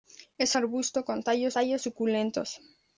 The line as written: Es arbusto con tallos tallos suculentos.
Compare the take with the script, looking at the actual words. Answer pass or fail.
pass